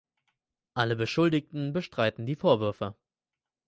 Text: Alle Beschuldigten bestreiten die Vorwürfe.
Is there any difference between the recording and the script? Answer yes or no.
no